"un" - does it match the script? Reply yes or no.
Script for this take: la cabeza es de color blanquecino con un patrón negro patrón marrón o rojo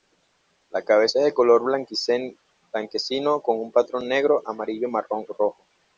yes